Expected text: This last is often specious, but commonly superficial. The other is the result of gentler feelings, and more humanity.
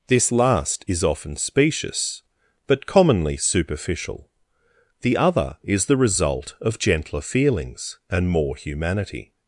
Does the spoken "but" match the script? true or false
true